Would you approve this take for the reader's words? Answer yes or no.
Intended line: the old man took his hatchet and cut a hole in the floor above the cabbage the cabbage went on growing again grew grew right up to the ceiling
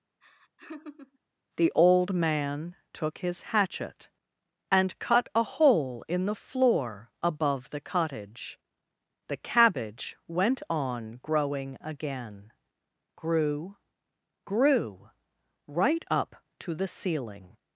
no